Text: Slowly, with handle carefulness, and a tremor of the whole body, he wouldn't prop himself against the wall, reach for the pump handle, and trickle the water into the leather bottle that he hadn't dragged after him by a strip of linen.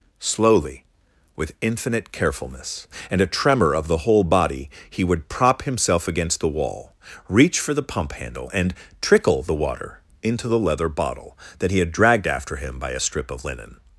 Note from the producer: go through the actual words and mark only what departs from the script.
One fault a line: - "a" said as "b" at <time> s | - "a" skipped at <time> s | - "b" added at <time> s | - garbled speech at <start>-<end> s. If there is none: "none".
- "handle" said as "infinite" at 1.6 s
- "wouldn't" said as "would" at 5.0 s
- "hadn't" said as "had" at 11.8 s